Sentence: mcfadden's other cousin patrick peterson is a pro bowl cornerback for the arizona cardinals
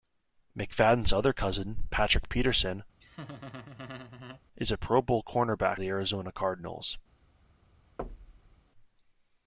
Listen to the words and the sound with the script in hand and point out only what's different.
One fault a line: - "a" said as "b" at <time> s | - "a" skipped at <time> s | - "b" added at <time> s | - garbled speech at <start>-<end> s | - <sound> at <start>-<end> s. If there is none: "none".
- laugh at 3.0-4.4 s
- "for" skipped at 5.8 s
- thud at 8.0-8.6 s